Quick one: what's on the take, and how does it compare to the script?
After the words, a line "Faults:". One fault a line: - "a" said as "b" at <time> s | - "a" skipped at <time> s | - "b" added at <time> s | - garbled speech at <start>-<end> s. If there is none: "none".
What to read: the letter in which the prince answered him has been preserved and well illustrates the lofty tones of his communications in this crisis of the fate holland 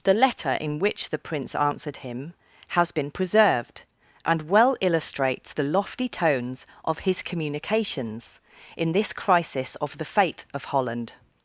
the letter in which the prince answered him has been preserved and well illustrates the lofty tones of his communications in this crisis of the fate of holland
Faults:
- "of" added at 10.5 s